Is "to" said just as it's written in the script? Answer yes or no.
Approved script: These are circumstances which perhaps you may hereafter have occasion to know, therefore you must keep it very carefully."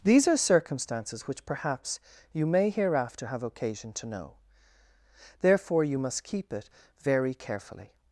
yes